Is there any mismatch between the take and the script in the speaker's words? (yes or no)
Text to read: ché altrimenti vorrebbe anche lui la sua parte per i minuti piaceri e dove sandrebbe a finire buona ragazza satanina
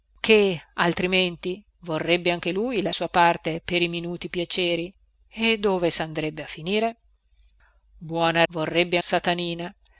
yes